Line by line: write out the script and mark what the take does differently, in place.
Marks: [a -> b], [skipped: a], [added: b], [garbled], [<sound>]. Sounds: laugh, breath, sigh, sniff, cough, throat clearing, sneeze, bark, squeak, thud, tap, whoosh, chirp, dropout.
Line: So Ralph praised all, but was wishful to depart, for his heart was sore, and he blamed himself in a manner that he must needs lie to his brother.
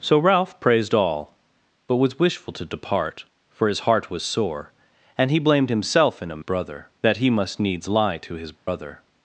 So Ralph praised all, but was wishful to depart, for his heart was sore, and he blamed himself in a [manner -> brother] that he must needs lie to his brother. [dropout]